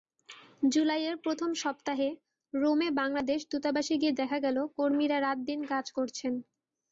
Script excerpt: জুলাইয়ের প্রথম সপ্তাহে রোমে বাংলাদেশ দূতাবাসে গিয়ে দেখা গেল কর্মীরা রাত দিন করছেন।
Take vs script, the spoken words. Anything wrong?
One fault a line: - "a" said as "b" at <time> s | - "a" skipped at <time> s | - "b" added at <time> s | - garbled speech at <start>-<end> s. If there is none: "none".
- "কাজ" added at 5.7 s